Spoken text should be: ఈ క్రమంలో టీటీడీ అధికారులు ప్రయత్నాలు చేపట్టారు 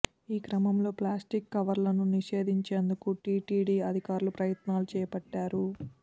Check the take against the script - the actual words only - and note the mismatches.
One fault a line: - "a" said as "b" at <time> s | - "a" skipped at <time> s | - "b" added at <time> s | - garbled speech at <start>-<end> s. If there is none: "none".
- "ప్లాస్టిక్ కవర్లను నిషేధించేందుకు" added at 1.0 s